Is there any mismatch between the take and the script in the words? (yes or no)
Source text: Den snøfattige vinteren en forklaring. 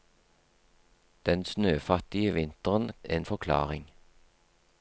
no